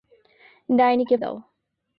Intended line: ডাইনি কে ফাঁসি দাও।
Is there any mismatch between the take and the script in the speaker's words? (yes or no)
yes